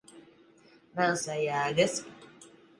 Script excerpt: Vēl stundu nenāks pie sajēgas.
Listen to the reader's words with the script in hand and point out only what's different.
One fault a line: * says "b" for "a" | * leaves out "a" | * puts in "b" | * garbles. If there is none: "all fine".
* leaves out "stundu nenāks pie"